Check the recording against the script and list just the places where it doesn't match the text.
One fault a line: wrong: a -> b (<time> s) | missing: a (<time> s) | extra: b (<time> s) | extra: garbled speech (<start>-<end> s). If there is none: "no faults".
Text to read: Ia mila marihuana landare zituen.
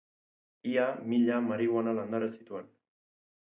no faults